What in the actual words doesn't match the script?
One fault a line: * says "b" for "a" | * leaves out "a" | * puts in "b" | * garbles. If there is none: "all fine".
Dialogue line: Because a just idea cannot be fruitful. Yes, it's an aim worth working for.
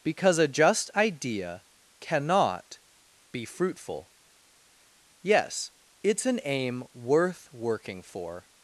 all fine